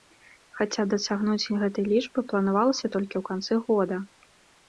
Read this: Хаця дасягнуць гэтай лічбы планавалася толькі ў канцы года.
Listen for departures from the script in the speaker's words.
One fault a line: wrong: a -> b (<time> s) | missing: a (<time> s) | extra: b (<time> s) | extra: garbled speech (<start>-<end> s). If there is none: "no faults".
no faults